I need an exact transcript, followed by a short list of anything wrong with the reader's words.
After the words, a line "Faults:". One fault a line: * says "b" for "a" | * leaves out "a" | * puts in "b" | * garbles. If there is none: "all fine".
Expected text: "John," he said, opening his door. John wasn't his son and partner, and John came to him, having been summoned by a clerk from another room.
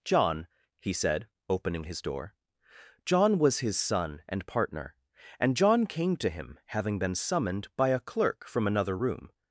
"John," he said, opening his door. John was his son and partner, and John came to him, having been summoned by a clerk from another room.
Faults:
* says "was" for "wasn't"